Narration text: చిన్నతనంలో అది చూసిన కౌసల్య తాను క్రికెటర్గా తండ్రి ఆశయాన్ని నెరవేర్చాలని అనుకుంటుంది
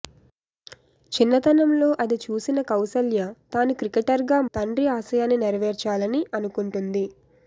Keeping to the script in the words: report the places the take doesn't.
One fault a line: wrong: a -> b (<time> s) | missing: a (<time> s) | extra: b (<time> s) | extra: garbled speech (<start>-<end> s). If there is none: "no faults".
no faults